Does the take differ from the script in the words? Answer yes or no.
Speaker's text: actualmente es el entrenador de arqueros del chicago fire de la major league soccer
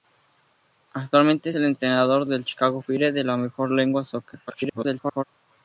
yes